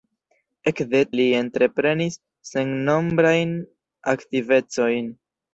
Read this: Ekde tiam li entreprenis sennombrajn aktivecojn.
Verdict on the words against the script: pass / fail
fail